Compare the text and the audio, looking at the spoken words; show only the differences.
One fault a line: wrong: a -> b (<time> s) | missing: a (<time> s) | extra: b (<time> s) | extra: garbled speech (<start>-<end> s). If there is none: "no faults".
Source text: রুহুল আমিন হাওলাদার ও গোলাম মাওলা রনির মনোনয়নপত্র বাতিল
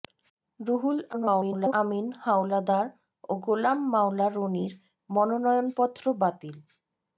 extra: garbled speech (1.1-1.7 s)